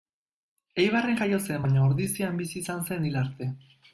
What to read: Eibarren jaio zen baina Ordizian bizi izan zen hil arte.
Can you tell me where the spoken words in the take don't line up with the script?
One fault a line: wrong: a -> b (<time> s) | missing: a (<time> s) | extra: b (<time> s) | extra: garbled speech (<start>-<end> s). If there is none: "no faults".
no faults